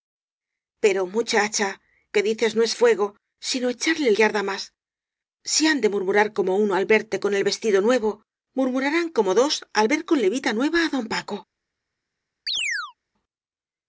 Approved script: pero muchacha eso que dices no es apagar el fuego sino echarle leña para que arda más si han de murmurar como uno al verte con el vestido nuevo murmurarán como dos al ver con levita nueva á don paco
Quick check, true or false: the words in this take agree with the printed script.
false